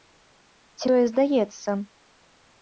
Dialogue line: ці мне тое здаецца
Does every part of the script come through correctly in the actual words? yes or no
no